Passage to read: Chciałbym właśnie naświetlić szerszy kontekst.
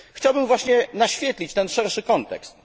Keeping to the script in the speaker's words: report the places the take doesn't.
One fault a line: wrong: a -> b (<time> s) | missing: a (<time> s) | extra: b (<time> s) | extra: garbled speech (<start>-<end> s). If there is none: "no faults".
extra: ten (1.5 s)